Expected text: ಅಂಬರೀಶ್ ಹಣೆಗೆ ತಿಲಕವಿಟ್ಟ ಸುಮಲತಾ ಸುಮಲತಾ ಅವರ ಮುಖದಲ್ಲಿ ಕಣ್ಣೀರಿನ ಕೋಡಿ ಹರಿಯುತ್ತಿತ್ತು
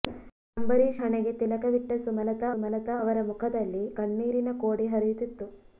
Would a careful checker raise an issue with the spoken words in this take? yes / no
no